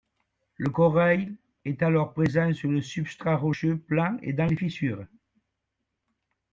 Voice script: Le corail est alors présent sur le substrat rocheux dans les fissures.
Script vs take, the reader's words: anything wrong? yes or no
yes